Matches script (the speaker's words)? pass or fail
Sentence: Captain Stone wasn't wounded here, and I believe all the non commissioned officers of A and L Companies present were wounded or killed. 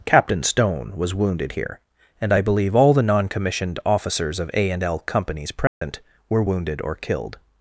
fail